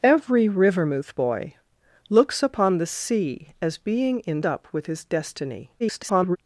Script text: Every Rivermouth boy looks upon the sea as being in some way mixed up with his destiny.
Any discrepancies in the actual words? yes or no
yes